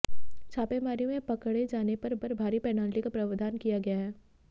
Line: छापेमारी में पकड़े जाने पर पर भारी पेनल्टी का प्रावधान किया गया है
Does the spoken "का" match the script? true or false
true